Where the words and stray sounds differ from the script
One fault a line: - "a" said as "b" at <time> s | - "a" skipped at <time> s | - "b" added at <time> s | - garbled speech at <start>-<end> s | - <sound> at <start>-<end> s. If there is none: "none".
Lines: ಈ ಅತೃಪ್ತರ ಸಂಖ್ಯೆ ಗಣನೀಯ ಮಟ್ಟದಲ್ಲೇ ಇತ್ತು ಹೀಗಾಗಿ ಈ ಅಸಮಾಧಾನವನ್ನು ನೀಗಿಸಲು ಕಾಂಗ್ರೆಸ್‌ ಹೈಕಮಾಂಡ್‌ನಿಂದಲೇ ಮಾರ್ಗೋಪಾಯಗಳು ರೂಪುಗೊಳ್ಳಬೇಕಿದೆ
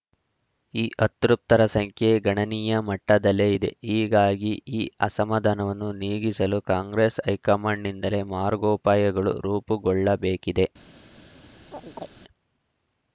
- "ಇತ್ತು" said as "ಇದೆ" at 3.5 s
- chirp at 11.7-12.1 s